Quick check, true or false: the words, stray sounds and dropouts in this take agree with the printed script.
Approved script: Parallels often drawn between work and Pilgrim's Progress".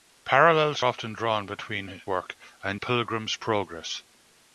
true